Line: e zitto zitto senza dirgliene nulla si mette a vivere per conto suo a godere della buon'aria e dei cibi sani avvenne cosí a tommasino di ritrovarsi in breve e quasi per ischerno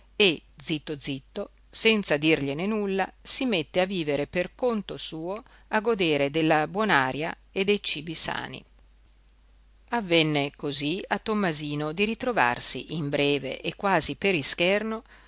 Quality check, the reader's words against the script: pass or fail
pass